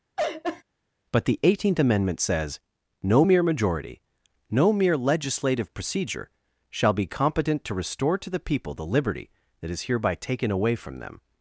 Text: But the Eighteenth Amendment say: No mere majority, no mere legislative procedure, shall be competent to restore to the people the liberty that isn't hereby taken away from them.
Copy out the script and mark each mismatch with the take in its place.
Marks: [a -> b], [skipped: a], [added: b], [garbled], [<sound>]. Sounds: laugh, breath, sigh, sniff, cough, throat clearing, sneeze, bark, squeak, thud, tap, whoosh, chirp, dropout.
[laugh] But the Eighteenth Amendment [say: -> says] No mere majority, no mere legislative procedure, shall be competent to restore to the people the liberty that [isn't -> is] hereby taken away from them.